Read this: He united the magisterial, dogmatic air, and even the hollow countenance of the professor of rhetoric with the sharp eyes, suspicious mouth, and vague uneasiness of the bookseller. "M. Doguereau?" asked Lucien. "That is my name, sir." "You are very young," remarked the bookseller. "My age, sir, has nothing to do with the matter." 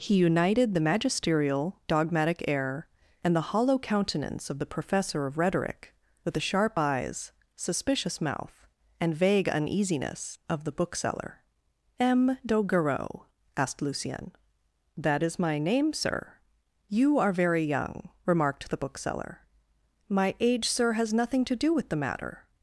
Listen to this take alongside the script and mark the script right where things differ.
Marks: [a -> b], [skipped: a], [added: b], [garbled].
He united the magisterial, dogmatic air, and [skipped: even] the hollow countenance of the professor of rhetoric with the sharp eyes, suspicious mouth, and vague uneasiness of the bookseller. "M. Doguereau?" asked Lucien. "That is my name, sir." "You are very young," remarked the bookseller. "My age, sir, has nothing to do with the matter."